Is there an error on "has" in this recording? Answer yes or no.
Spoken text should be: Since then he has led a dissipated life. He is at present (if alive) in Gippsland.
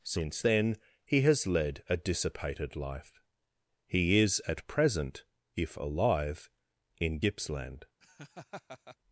no